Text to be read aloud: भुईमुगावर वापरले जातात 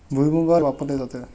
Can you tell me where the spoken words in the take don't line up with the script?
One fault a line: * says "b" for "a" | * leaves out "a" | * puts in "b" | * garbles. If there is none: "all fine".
all fine